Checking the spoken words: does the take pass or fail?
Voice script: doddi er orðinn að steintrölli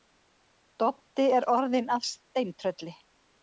pass